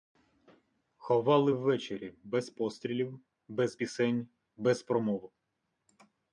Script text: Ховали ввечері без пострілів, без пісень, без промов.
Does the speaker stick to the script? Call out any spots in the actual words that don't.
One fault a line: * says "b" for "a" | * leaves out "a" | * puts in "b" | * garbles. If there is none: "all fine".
all fine